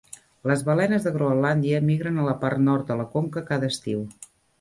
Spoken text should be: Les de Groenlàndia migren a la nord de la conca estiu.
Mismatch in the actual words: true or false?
true